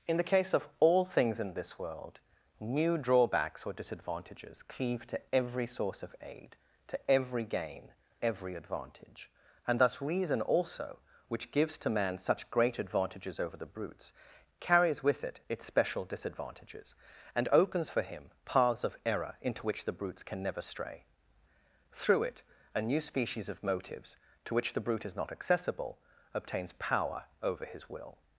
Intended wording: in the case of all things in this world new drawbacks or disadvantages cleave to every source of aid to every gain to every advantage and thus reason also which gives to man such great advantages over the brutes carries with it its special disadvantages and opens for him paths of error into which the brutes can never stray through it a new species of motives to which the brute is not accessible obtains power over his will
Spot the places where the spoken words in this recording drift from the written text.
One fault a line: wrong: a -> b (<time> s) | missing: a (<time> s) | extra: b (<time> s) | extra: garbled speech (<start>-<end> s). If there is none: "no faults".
missing: to (7.9 s)